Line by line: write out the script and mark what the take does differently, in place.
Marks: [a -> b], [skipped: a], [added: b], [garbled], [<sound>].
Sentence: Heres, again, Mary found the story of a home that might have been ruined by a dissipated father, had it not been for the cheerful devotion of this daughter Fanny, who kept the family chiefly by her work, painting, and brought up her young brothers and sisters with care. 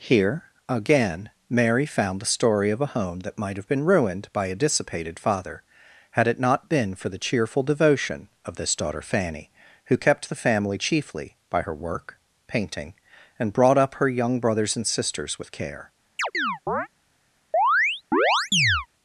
[Heres, -> Here] again, Mary found the story of a home that might have been ruined by a dissipated father, had it not been for the cheerful devotion of this daughter Fanny, who kept the family chiefly by her work, painting, and brought up her young brothers and sisters with care. [chirp] [chirp]